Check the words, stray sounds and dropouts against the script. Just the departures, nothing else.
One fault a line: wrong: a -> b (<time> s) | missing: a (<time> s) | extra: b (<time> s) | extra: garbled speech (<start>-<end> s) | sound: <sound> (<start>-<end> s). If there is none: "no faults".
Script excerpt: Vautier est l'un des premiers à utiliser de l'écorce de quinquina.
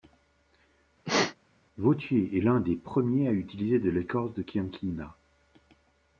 sound: sneeze (1.0-1.3 s)